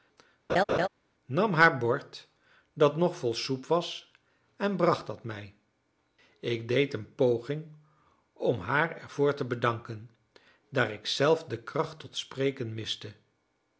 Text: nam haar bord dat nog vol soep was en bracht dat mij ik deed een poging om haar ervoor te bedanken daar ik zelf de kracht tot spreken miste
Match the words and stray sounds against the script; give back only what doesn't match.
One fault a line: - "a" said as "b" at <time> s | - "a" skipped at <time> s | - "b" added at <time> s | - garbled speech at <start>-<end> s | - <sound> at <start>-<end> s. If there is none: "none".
- laugh at 0.5-0.9 s